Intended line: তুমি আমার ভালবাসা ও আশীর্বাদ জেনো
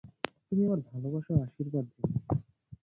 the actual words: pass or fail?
pass